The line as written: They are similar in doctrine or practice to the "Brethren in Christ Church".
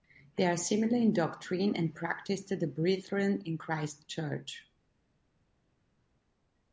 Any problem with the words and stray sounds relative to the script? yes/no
yes